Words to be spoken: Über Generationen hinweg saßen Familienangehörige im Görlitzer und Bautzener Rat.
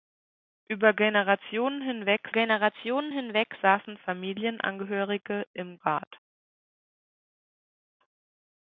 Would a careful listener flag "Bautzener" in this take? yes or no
yes